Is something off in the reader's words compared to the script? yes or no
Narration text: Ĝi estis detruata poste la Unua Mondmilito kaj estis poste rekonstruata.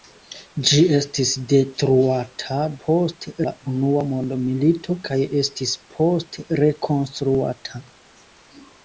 no